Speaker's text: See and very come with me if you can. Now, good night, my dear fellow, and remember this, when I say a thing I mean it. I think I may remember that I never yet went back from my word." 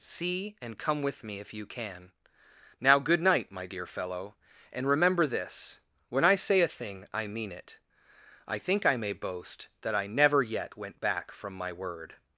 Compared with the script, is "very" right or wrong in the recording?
wrong